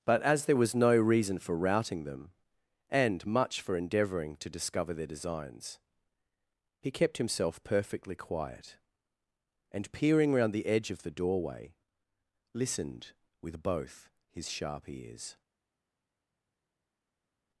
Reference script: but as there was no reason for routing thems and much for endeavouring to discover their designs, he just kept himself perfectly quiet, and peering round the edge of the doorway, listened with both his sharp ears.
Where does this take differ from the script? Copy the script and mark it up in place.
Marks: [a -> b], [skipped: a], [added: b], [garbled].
but as there was no reason for routing [thems -> them] and much for endeavouring to discover their designs, he [skipped: just] kept himself perfectly quiet, and peering round the edge of the doorway, listened with both his sharp ears.